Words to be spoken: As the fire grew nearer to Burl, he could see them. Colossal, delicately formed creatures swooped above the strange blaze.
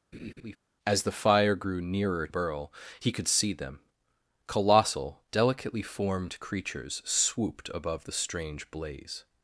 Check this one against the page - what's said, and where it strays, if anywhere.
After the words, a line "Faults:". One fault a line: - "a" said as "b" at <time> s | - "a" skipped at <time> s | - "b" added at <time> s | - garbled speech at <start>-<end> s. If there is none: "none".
As the fire grew nearer Burl, he could see them. Colossal, delicately formed creatures swooped above the strange blaze.
Faults:
- "to" skipped at 2.3 s